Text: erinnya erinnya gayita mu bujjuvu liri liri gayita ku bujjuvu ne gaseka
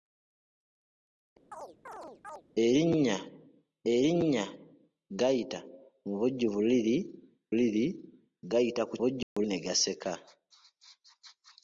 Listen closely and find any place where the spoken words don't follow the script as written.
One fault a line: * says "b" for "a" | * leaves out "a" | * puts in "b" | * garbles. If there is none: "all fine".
all fine